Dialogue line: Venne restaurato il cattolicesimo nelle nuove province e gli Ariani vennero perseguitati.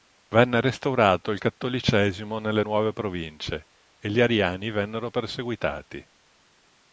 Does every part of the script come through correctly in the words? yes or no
yes